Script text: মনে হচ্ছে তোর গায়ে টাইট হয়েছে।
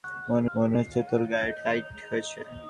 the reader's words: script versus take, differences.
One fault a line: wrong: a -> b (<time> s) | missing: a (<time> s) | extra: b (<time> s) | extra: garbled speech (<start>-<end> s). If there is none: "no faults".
extra: মনে (0.6 s)